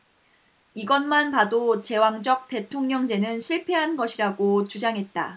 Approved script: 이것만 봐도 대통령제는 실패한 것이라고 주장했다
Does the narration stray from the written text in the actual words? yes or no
yes